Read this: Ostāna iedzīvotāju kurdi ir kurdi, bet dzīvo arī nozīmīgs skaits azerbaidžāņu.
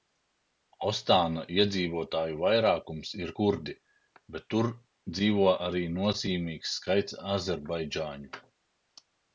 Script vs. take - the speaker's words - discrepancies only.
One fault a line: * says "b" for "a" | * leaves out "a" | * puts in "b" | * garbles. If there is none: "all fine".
* says "vairākums" for "kurdi"
* puts in "tur"